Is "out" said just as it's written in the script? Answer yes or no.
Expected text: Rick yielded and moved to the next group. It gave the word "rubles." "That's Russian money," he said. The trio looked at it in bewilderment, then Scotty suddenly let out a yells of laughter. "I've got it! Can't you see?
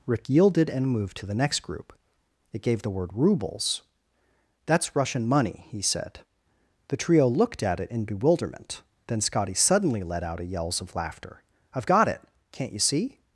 yes